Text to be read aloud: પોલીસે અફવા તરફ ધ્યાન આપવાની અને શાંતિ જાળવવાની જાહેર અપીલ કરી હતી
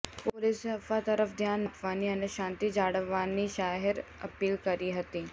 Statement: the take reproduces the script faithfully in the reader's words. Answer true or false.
true